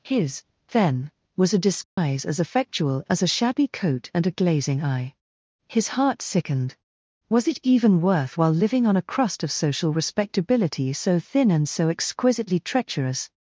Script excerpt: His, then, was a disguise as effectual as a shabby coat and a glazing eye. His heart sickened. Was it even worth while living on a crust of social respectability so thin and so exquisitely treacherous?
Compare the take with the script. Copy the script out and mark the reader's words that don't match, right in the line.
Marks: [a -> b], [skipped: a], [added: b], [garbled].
His, then, was a disguise as effectual as a shabby coat and a glazing eye. His heart sickened. Was it even worth while living on a crust of social respectability so thin and so exquisitely treacherous?